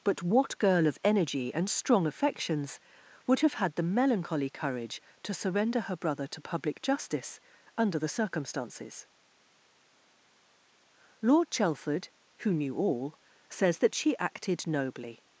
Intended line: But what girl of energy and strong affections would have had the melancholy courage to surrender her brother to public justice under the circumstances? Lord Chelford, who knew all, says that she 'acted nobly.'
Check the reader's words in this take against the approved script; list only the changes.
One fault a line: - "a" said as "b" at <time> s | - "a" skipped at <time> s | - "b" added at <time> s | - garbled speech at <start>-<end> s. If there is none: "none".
none